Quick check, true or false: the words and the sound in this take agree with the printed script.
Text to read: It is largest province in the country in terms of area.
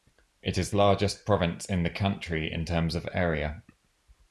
true